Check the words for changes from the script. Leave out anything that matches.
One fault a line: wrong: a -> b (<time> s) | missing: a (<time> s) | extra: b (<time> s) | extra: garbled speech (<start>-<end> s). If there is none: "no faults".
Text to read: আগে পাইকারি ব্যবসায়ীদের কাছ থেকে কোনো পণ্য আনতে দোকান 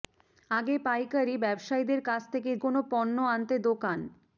no faults